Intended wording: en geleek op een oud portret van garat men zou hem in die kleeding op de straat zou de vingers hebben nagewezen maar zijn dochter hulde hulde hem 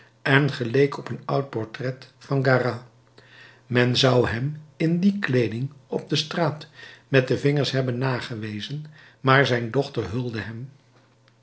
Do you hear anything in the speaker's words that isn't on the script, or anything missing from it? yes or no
yes